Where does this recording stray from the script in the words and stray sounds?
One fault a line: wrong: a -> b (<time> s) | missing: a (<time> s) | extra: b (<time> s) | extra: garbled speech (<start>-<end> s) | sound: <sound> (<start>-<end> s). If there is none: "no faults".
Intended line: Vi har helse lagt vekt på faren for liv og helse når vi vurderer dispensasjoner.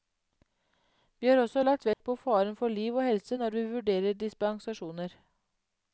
wrong: helse -> også (1.4 s)
sound: dropout (1.9-2.0 s)